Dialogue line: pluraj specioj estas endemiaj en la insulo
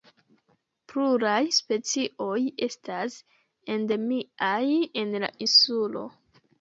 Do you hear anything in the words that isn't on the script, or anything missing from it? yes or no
no